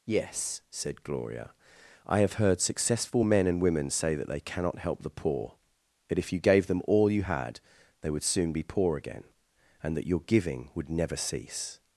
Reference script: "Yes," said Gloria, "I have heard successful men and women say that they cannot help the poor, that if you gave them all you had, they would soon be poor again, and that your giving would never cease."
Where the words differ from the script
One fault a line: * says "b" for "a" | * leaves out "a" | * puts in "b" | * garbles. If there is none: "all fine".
all fine